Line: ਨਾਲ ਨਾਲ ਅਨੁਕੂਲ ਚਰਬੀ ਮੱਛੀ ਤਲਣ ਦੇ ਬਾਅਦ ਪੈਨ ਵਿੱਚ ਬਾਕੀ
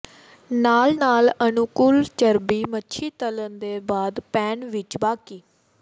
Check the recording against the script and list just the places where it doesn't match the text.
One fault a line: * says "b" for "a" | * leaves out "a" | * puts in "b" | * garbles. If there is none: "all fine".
all fine